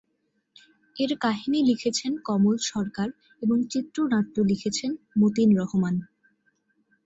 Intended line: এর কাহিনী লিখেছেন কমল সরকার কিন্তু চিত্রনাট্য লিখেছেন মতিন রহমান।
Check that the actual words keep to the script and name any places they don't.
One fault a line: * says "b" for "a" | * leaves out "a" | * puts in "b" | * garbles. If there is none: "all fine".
* says "এবং" for "কিন্তু"